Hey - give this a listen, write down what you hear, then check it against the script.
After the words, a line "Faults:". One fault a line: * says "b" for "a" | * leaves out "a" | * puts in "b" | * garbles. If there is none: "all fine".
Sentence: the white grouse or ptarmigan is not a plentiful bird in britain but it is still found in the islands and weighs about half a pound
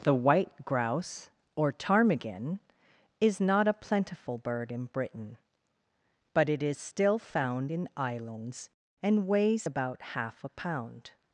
the white grouse or ptarmigan is not a plentiful bird in britain but it is still found in islands and weighs about half a pound
Faults:
* leaves out "the"